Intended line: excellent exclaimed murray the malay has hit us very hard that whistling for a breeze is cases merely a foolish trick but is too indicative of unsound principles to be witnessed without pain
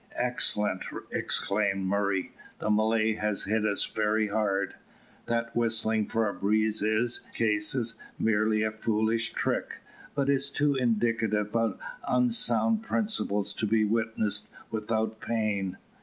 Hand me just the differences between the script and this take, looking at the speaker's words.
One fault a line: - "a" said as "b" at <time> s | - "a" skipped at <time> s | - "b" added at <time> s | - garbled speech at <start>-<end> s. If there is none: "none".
none